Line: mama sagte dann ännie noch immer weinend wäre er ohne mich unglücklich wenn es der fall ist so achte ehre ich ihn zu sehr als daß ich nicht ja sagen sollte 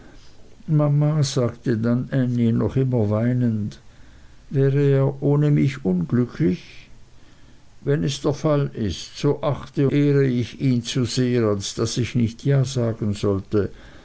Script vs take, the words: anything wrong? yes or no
no